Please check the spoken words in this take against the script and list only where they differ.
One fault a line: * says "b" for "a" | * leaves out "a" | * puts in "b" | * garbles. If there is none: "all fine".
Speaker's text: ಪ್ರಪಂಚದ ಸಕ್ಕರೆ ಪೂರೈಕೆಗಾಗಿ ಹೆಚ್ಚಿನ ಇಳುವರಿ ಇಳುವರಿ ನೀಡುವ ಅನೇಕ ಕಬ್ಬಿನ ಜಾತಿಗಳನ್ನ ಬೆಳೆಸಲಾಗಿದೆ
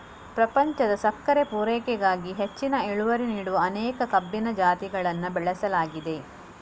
* leaves out "ಇಳುವರಿ"